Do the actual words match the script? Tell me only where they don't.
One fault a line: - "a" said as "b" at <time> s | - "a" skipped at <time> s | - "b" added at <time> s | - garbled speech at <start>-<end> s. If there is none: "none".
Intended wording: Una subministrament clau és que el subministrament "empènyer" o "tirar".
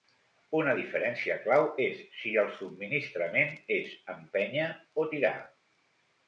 - "subministrament" said as "diferència" at 0.8 s
- "que" said as "si" at 2.2 s
- "és" added at 3.8 s